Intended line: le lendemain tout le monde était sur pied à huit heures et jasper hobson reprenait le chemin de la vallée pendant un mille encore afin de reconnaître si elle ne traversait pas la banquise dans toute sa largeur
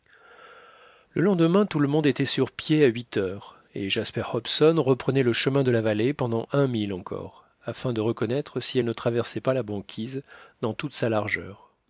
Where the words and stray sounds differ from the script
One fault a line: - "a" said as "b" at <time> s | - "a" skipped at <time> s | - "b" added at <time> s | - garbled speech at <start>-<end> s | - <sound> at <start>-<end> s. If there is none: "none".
none